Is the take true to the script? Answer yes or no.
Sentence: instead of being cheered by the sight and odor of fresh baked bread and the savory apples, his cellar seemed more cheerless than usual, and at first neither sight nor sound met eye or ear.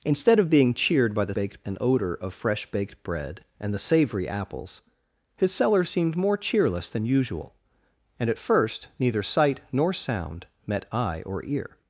no